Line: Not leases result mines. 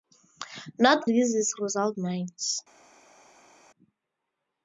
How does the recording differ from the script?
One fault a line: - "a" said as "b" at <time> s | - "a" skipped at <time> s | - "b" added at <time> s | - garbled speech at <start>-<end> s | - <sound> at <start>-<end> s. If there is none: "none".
none